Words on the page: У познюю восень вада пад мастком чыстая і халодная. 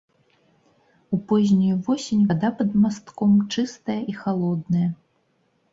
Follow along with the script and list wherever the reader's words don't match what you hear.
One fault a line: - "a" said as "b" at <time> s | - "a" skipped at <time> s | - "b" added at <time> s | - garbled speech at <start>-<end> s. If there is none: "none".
none